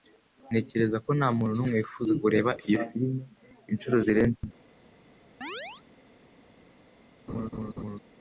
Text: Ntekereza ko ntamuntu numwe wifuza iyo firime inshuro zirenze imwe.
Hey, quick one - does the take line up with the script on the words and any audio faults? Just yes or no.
no